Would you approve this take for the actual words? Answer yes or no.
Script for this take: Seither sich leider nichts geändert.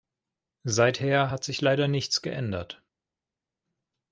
no